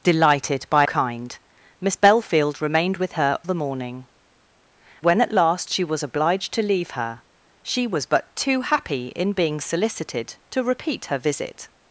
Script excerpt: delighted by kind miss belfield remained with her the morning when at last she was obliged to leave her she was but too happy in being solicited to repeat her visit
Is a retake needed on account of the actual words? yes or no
no